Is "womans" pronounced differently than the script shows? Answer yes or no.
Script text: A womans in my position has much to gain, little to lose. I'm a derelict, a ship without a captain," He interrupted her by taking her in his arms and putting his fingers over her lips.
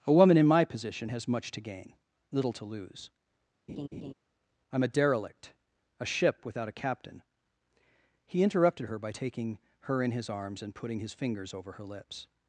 yes